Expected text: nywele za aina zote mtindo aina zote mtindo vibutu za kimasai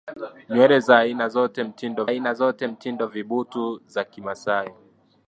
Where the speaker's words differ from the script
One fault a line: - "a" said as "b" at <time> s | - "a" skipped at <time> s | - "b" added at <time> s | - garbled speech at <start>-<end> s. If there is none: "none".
none